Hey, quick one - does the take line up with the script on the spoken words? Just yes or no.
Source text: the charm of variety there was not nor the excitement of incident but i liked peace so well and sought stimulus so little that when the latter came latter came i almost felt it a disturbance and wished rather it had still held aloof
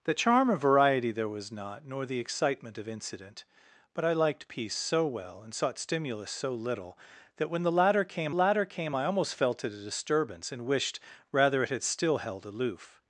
yes